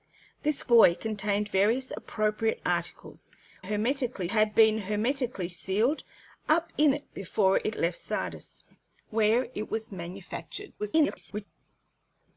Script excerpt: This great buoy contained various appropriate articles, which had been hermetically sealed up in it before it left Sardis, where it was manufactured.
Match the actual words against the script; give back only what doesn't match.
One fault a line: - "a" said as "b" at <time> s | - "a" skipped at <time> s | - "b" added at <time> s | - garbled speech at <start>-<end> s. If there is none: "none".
- "great" skipped at 0.6 s
- "which" said as "hermetically" at 3.6 s
- garbled speech at 10.8-11.5 s